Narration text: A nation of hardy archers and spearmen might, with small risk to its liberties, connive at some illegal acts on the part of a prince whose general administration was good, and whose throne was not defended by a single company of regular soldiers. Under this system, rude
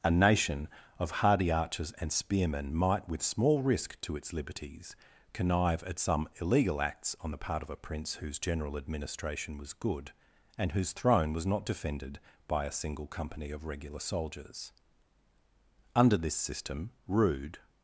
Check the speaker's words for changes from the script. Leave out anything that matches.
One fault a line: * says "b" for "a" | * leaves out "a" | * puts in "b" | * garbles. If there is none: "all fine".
all fine